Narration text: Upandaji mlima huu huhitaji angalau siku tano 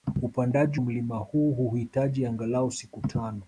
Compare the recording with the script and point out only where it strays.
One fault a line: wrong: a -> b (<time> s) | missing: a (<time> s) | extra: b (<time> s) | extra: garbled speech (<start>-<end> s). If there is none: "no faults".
no faults